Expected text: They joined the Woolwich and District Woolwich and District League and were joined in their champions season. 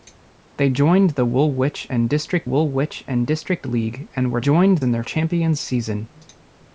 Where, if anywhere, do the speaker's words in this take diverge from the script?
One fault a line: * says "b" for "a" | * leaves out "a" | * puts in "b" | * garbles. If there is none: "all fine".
all fine